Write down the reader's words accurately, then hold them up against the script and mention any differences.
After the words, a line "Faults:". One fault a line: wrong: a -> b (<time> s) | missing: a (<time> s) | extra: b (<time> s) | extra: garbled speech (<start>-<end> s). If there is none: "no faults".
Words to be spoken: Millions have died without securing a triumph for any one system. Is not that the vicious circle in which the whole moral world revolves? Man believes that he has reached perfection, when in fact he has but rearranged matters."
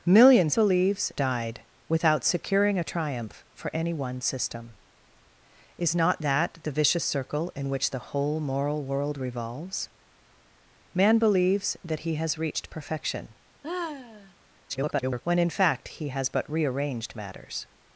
Millions believes died without securing a triumph for any one system. Is not that the vicious circle in which the whole moral world revolves? Man believes that he has reached perfection, [garbled] when in fact he has but rearranged matters."
Faults:
wrong: have -> believes (0.5 s)
extra: garbled speech (14.7-15.2 s)